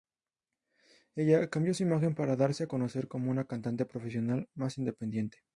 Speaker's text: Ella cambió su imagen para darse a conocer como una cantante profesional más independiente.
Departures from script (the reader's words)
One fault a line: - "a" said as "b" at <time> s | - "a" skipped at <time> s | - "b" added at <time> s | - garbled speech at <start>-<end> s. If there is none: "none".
none